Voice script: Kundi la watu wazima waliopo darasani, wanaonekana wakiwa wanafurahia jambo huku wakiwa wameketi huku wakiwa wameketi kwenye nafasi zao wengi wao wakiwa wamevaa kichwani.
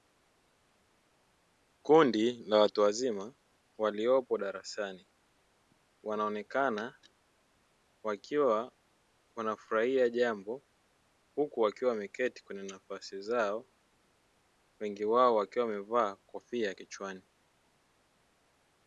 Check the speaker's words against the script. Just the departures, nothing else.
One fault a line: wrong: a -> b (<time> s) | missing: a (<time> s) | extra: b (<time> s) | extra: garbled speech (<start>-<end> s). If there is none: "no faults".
missing: huku wakiwa wameketi (12.4 s)
extra: kofia (16.1 s)